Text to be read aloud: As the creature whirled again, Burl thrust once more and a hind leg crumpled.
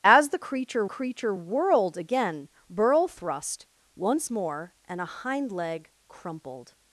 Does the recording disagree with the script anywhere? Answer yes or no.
yes